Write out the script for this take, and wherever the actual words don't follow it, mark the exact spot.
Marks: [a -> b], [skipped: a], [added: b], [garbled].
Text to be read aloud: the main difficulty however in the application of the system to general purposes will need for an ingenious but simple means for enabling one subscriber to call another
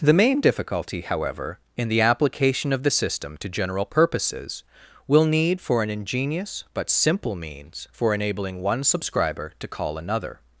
the main difficulty however in the application of the system to general purposes will need for an ingenious but simple means for enabling one subscriber to call another